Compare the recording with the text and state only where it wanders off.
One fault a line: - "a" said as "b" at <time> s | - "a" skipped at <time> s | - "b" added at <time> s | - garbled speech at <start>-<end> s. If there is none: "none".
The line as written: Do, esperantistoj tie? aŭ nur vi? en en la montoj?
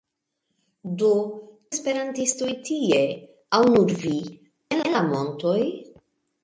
none